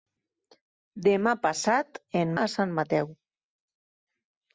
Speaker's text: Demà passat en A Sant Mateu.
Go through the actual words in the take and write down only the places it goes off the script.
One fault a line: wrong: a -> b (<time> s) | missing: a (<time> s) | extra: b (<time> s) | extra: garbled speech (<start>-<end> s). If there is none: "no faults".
no faults